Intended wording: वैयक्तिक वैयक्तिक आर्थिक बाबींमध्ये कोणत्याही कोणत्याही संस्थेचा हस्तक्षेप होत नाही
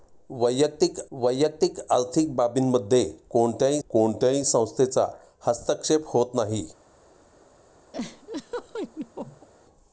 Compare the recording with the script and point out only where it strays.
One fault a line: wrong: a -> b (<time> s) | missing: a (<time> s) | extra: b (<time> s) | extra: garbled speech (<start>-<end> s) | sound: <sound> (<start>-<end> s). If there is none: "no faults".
sound: laugh (7.9-9.5 s)